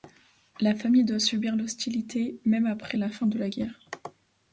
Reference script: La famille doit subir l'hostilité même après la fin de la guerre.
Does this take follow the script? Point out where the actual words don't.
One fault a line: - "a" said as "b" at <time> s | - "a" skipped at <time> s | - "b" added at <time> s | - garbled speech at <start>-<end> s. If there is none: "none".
none